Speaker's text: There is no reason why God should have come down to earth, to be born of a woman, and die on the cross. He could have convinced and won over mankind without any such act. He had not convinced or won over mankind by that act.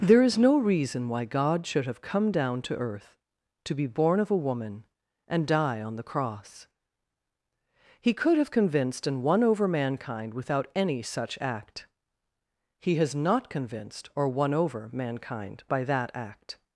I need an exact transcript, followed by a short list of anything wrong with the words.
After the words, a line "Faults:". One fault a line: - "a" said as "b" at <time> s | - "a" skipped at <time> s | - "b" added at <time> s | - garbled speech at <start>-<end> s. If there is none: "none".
There is no reason why God should have come down to earth, to be born of a woman, and die on the cross. He could have convinced and won over mankind without any such act. He has not convinced or won over mankind by that act.
Faults:
- "had" said as "has" at 12.9 s